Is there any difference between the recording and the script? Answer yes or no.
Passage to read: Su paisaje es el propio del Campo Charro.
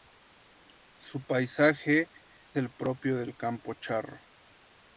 yes